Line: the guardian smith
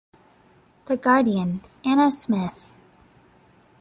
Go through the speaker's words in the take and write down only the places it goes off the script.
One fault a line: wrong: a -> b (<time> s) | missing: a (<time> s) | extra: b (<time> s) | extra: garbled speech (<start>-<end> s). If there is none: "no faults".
extra: anna (1.8 s)